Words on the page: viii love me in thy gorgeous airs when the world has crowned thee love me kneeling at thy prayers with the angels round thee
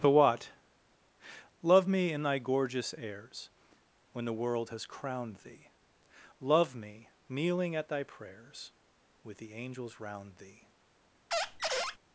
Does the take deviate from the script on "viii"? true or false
true